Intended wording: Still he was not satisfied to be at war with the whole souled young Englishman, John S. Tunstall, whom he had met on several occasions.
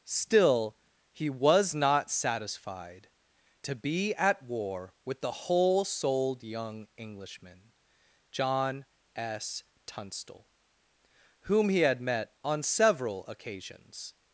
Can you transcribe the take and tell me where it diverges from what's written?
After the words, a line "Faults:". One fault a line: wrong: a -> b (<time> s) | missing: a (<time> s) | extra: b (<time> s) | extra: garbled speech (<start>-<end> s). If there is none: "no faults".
Still he was not satisfied to be at war with the whole souled young Englishman, John S. Tunstall, whom he had met on several occasions.
Faults:
no faults